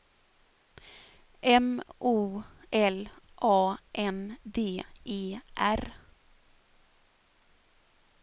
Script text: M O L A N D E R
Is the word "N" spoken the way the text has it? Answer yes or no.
yes